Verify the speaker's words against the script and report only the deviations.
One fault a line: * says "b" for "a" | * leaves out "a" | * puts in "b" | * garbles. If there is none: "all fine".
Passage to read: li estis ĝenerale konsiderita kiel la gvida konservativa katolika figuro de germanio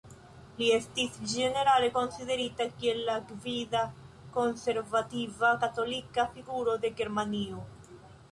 all fine